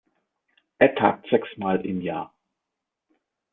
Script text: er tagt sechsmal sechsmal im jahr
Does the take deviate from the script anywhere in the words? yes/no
yes